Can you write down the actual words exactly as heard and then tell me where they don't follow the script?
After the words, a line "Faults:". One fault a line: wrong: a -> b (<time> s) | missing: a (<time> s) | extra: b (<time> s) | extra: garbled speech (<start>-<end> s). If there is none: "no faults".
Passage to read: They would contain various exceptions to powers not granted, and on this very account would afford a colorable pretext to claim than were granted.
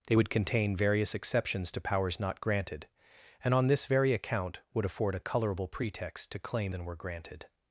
They would contain various exceptions to powers not granted, and on this very account would afford a colorable pretext to claim than were granted.
Faults:
no faults